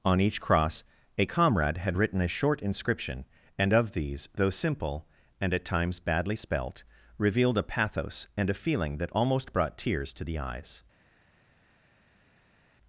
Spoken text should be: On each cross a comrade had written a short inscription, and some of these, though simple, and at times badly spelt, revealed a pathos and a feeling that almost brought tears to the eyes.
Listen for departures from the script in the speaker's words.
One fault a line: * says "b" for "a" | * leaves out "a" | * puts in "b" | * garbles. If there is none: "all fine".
* leaves out "some"